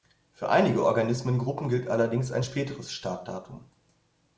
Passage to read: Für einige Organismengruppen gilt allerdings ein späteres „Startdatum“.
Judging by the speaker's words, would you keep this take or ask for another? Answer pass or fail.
pass